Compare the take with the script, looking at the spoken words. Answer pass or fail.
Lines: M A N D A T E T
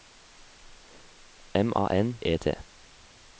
fail